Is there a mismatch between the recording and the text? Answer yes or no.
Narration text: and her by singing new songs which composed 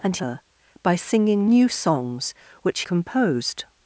no